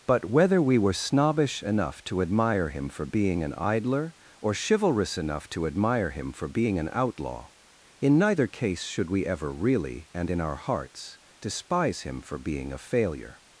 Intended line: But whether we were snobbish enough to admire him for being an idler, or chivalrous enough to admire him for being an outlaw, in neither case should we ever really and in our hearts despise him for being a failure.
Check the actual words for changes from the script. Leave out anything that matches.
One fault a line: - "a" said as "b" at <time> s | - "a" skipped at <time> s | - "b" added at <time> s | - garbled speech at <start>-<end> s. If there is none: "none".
none